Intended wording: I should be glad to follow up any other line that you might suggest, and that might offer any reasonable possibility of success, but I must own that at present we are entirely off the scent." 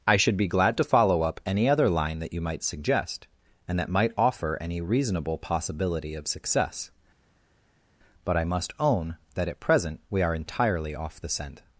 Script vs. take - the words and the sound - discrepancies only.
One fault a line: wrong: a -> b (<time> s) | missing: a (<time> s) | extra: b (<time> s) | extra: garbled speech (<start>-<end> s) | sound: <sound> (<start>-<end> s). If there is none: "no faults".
no faults